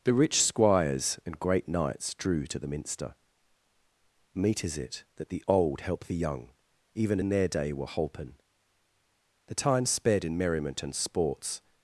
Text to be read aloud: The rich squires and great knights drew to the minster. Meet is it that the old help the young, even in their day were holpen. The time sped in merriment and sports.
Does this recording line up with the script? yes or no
yes